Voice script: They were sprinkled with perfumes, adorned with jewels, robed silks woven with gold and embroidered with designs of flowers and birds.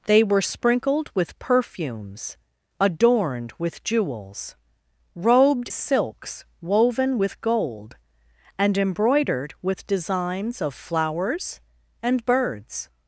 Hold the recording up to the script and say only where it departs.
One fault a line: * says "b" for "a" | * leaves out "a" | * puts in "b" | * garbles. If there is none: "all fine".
all fine